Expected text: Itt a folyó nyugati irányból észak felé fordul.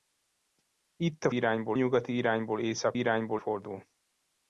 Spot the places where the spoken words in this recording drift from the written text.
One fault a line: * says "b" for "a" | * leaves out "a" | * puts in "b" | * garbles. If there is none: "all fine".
* says "irányból" for "folyó"
* says "irányból" for "felé"